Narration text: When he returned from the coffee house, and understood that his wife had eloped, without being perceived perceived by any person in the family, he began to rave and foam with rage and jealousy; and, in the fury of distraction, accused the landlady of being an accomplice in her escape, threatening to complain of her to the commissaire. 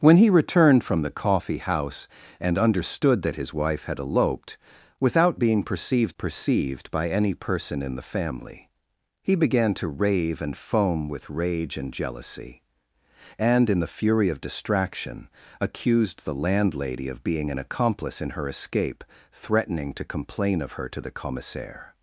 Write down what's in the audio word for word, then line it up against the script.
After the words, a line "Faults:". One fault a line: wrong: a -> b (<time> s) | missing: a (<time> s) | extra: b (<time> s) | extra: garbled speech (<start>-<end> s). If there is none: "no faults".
When he returned from the coffee house, and understood that his wife had eloped, without being perceived perceived by any person in the family, he began to rave and foam with rage and jealousy; and, in the fury of distraction, accused the landlady of being an accomplice in her escape, threatening to complain of her to the commissaire.
Faults:
no faults